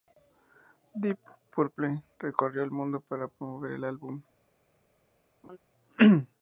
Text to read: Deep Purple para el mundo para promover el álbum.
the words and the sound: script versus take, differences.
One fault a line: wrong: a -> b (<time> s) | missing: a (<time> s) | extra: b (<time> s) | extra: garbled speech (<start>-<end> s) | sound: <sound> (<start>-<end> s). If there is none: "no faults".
wrong: para -> recorrió (2.2 s)
sound: laugh (5.4-5.6 s)